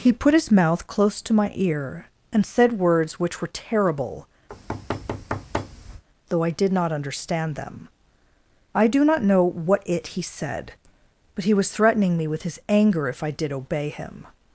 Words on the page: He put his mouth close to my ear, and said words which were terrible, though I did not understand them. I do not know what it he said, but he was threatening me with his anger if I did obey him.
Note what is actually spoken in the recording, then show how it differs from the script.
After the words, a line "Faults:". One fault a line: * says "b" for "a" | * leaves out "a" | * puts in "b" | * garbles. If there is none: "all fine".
He put his mouth close to my ear, and said words which were terrible, though I did not understand them. I do not know what it he said, but he was threatening me with his anger if I did obey him.
Faults:
all fine